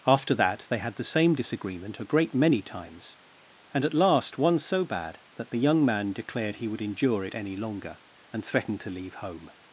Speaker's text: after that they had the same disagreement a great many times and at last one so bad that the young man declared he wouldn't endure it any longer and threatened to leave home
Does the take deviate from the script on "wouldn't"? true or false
true